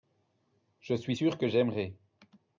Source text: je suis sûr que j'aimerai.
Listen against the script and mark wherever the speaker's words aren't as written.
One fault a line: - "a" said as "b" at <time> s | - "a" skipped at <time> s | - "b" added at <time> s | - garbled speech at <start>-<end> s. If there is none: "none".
none